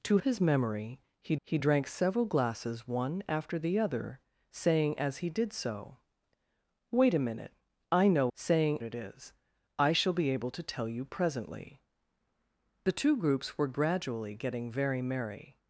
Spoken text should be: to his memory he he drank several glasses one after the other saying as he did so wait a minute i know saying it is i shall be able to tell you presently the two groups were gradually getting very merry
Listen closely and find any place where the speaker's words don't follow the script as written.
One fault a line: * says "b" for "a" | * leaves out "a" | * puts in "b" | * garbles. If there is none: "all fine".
all fine